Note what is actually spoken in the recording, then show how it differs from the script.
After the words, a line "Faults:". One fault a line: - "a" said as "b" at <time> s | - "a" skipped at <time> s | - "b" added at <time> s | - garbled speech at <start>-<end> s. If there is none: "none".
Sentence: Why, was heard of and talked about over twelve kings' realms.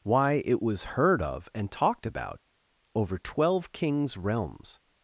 Why, it was heard of and talked about over twelve kings' realms.
Faults:
- "it" added at 0.5 s